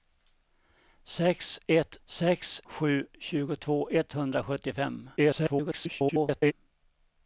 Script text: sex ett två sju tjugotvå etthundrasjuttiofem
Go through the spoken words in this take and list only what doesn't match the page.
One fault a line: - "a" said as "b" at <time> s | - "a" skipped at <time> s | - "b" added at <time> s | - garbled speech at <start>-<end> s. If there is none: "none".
- "två" said as "sex" at 2.0 s
- garbled speech at 5.2-6.5 s